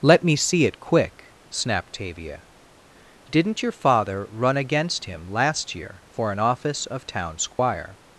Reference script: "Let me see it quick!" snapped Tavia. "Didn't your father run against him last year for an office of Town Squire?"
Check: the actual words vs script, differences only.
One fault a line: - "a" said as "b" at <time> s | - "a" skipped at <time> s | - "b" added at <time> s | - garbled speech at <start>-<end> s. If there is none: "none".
none